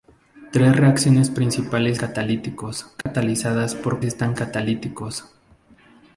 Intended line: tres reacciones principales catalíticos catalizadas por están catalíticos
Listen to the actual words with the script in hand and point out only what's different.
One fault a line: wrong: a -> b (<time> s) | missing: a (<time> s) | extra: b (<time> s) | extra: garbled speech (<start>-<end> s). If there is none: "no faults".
no faults